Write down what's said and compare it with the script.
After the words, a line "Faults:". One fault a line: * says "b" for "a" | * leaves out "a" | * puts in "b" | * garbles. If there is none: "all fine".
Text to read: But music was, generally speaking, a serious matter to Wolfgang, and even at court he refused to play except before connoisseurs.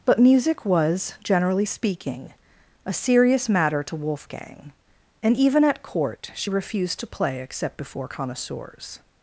But music was, generally speaking, a serious matter to Wolfgang, and even at court she refused to play except before connoisseurs.
Faults:
* says "she" for "he"